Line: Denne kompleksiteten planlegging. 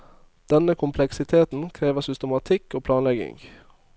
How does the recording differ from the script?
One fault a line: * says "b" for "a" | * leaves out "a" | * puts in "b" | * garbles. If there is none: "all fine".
* puts in "krever systematikk og"